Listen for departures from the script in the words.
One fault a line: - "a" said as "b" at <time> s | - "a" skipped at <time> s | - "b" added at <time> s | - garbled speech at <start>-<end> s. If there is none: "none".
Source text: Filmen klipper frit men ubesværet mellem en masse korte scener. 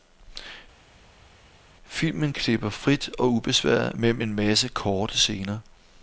- "men" said as "og" at 3.2 s